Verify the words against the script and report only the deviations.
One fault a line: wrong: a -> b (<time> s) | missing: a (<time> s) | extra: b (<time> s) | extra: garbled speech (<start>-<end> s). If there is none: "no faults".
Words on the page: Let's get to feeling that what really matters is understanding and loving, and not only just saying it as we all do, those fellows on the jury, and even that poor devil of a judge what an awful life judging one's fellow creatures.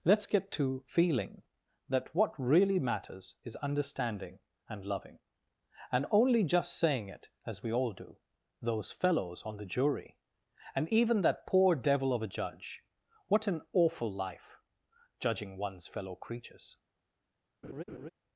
missing: not (6.0 s)